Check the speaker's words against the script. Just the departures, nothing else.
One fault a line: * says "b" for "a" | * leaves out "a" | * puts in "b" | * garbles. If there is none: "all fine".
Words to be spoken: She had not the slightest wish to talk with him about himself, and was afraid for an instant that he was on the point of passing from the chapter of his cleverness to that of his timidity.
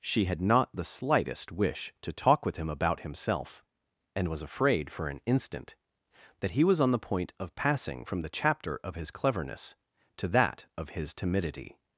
all fine